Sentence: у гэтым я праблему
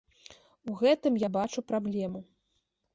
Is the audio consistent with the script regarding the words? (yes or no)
no